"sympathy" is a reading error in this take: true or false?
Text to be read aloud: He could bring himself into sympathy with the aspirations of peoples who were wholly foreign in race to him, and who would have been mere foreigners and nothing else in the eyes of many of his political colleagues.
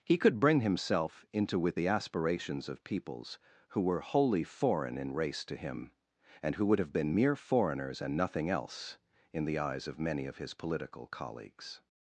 true